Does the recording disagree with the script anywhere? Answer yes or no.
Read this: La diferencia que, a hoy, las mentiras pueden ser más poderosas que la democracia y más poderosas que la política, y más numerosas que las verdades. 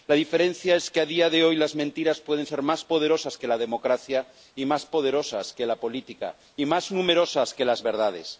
yes